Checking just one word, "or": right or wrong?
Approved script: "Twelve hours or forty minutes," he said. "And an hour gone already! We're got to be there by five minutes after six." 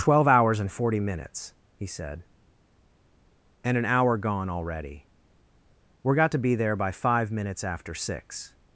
wrong